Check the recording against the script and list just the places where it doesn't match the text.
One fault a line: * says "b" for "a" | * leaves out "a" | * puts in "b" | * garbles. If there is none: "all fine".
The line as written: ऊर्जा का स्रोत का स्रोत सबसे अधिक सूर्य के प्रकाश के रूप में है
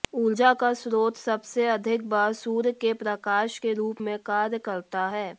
* leaves out "का स्रोत"
* puts in "बार"
* puts in "कार्य करता"